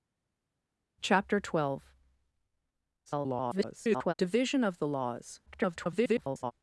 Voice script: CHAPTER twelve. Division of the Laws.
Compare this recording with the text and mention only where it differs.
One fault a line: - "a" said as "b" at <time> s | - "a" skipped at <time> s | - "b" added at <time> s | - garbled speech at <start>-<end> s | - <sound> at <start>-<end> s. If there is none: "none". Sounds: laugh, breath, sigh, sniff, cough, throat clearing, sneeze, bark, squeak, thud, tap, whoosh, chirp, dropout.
- garbled speech at 3.1-4.1 s
- garbled speech at 5.5-6.5 s